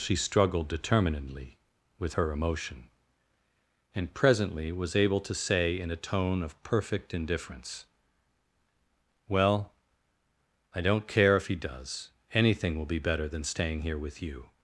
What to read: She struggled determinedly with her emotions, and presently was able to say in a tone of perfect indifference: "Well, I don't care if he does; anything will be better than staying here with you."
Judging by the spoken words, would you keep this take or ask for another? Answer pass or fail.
fail